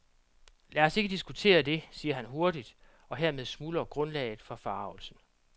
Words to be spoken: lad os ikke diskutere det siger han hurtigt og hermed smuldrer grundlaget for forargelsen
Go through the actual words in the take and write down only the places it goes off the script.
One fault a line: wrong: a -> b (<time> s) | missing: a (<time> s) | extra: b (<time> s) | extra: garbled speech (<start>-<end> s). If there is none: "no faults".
no faults